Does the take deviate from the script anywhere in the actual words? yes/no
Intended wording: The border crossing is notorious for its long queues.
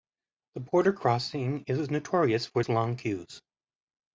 no